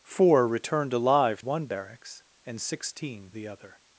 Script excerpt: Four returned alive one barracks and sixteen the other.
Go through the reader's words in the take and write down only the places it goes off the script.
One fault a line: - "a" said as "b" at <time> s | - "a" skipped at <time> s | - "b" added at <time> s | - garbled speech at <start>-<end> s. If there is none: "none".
none